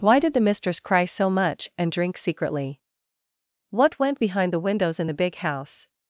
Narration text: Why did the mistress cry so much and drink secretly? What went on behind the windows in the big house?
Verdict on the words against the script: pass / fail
fail